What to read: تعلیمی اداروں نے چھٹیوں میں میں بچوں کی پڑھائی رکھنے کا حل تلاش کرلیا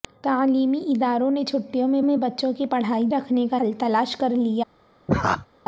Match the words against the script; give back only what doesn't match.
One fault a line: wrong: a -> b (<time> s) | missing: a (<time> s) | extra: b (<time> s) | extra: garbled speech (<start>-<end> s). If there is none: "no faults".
no faults